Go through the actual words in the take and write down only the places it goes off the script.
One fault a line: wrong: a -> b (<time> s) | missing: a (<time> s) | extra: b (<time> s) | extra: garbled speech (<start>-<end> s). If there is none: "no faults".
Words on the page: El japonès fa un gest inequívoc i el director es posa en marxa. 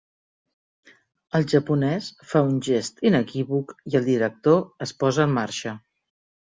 no faults